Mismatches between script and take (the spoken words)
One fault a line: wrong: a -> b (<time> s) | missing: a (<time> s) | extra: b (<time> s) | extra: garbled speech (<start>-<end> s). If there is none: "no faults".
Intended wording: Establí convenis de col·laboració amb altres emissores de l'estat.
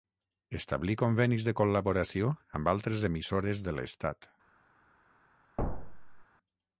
no faults